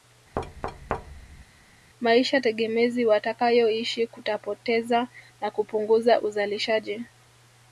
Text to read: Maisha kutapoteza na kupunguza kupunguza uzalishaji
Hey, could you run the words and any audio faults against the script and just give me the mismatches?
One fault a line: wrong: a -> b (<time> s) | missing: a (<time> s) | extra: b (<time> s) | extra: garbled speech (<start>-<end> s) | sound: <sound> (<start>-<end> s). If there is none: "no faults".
sound: thud (0.3-1.4 s)
extra: tegemezi watakayoishi (2.4 s)
missing: kupunguza (6.2 s)